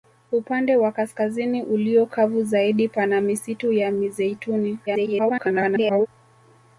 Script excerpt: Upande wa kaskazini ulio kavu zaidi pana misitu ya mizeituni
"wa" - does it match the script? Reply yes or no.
yes